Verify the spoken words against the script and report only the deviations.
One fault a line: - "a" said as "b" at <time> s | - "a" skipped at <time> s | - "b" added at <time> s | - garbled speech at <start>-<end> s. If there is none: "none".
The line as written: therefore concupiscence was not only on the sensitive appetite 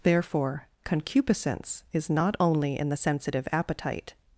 - "was" said as "is" at 1.9 s
- "on" said as "in" at 2.8 s